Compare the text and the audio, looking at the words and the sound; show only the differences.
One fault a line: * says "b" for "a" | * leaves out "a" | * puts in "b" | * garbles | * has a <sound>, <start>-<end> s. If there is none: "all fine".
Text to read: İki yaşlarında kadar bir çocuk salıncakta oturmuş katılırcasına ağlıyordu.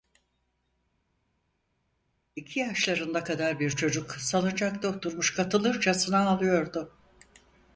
all fine